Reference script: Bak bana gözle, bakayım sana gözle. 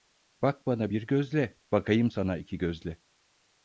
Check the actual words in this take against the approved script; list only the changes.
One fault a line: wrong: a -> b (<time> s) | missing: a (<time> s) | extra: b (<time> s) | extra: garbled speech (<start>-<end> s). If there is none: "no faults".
extra: bir (0.9 s)
extra: iki (2.4 s)